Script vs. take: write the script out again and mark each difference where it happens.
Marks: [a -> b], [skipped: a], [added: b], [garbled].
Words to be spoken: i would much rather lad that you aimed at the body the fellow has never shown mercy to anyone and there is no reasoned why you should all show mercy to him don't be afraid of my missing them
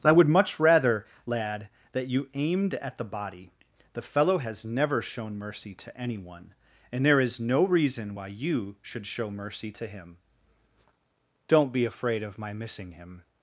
i would much rather lad that you aimed at the body the fellow has never shown mercy to anyone and there is no [reasoned -> reason] why you should [skipped: all] show mercy to him don't be afraid of my missing [them -> him]